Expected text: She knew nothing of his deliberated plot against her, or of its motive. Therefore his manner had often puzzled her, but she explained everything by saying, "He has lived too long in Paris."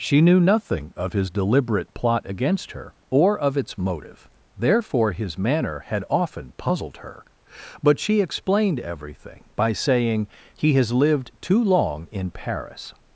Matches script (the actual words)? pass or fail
fail